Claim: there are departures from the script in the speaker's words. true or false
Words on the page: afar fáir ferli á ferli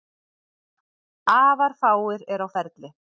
true